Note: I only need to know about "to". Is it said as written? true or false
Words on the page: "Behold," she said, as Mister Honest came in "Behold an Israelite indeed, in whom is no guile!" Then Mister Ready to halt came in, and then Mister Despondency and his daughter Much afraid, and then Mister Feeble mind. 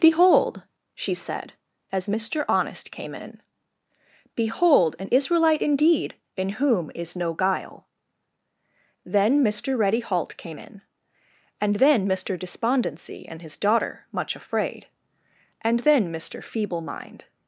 false